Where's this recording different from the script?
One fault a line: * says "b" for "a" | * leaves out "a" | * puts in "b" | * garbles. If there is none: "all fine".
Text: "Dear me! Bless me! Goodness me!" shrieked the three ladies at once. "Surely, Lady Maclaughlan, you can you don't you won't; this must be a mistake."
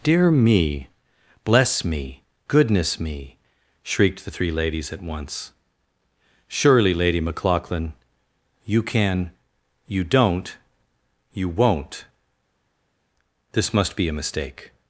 all fine